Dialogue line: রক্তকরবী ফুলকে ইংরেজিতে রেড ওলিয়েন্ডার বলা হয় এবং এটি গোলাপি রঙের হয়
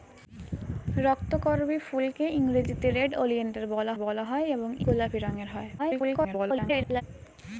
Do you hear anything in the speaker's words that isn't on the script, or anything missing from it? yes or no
yes